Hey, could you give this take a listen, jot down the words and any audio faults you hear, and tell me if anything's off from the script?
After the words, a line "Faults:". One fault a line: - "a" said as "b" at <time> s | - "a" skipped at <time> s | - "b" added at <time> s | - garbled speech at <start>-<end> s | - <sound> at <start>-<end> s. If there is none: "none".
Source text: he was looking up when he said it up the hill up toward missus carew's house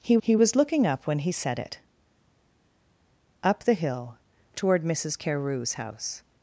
he he was looking up when he said it up the hill toward missus carew's house
Faults:
- "he" added at 0.2 s
- "up" skipped at 4.2 s